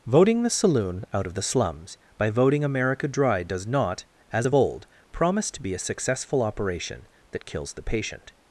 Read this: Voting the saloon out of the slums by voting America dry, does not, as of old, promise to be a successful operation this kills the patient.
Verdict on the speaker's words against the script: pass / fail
fail